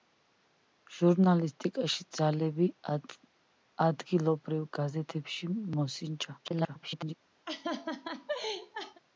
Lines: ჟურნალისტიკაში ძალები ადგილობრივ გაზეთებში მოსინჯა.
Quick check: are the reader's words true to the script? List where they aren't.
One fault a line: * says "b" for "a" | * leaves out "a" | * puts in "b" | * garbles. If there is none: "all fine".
* garbles